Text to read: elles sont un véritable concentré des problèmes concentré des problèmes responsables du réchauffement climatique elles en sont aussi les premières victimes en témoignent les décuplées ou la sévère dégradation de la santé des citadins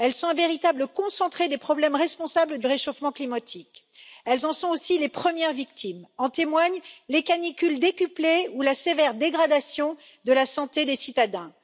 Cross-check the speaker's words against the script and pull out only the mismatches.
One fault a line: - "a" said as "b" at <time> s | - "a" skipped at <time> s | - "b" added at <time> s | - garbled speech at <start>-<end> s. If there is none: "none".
- "concentré des problèmes" skipped at 1.9 s
- "canicules" added at 7.2 s